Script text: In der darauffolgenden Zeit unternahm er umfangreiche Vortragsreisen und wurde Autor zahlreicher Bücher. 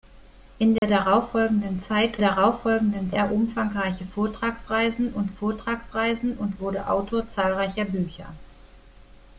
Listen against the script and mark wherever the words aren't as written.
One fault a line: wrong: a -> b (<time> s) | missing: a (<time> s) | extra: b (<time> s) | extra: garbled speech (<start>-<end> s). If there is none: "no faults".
wrong: unternahm -> darauffolgenden (2.2 s)
extra: Vortragsreisen und (5.3 s)